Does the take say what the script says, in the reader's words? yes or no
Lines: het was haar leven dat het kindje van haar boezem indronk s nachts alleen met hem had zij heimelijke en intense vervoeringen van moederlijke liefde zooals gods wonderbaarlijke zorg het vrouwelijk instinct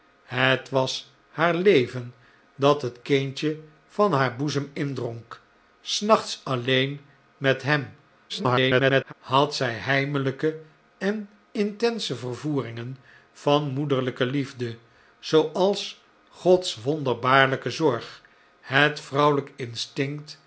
no